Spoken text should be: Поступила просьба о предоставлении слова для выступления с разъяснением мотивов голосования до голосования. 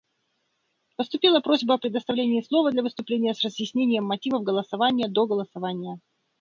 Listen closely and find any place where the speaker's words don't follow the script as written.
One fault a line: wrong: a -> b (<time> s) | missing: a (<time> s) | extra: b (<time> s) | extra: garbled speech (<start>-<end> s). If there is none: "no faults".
no faults